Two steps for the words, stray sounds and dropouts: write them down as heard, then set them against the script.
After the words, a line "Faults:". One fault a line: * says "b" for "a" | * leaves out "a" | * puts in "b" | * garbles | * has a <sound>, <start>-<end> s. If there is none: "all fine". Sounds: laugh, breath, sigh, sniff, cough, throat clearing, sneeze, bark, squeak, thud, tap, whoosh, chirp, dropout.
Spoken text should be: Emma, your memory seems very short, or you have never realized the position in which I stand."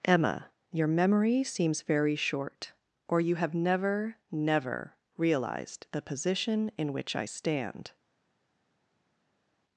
Emma, your memory seems very short, or you have never never realized the position in which I stand."
Faults:
* puts in "never"